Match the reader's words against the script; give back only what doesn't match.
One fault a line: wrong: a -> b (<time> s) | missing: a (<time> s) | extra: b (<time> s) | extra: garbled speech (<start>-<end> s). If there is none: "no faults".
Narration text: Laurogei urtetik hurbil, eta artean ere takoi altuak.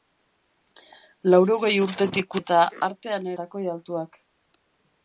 missing: hurbil (2.4 s)
missing: ere (3.3 s)